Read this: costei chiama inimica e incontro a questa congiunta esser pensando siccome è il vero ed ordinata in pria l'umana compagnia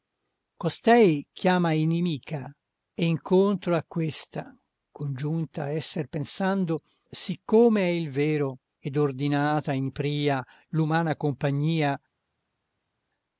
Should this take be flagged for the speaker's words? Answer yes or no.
no